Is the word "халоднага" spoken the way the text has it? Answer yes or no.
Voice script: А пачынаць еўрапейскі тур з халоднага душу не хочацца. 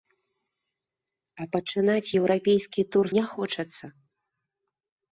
no